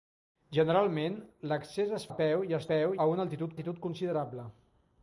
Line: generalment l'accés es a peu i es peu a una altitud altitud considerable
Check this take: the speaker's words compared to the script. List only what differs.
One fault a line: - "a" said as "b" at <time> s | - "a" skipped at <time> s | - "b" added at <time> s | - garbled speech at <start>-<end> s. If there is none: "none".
none